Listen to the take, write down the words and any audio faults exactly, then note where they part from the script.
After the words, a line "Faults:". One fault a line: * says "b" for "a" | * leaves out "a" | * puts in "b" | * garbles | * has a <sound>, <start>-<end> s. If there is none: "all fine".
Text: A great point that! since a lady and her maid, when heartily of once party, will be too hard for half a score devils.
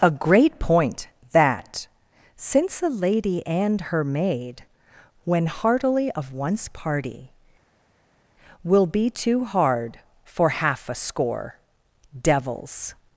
A great point that! since a lady and her maid, when heartily of once party, will be too hard for half a score devils.
Faults:
all fine